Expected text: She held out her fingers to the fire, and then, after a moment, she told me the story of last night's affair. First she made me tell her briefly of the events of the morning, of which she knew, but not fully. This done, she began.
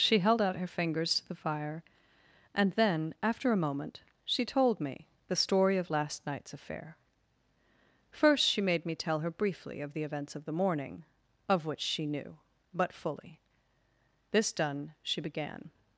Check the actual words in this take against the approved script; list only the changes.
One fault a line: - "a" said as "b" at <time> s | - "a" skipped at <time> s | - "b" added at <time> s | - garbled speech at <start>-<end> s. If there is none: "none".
- "not" skipped at 12.9 s